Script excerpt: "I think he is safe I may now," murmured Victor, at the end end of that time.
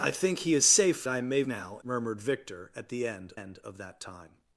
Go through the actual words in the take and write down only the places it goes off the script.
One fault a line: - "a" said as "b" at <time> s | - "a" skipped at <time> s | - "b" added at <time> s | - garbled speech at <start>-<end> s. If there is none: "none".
none